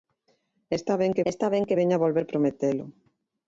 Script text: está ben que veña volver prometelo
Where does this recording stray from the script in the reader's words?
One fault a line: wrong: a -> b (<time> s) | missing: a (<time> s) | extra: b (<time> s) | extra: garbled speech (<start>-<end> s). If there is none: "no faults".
extra: está ben que (1.3 s)